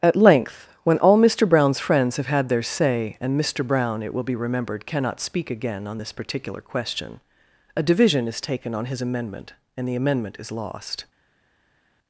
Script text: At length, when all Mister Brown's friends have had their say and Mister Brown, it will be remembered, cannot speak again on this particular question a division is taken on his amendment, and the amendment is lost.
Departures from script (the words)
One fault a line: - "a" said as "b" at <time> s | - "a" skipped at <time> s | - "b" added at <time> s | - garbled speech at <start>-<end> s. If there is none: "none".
none